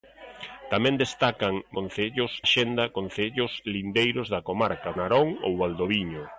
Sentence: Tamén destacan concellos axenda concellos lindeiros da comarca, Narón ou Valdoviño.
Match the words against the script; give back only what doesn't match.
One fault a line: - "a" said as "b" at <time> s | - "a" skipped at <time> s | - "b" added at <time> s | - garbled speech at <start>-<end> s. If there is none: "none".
none